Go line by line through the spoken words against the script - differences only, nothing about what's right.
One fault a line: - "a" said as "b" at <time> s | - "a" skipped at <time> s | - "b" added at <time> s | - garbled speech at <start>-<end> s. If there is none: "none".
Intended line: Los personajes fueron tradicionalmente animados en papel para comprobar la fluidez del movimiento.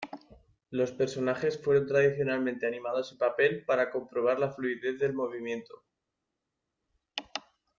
none